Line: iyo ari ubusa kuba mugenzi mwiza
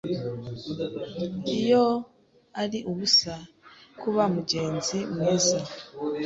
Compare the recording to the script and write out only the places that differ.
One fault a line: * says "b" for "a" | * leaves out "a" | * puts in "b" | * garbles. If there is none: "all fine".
all fine